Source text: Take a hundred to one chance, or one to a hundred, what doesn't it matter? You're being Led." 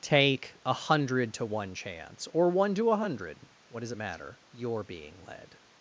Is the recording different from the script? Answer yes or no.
yes